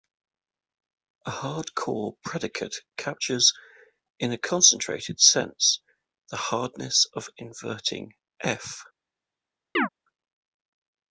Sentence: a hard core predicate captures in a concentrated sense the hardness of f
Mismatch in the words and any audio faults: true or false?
true